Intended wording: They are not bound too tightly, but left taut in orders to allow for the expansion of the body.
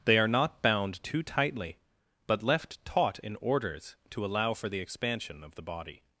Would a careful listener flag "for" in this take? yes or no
no